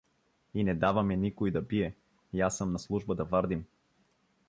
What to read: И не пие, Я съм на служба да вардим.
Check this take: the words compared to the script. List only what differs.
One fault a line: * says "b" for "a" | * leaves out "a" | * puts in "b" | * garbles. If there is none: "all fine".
* puts in "даваме никой да"